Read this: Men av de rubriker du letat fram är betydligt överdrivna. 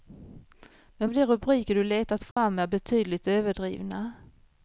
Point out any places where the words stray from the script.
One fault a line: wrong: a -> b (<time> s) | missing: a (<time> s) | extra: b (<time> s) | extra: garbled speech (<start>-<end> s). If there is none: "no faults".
no faults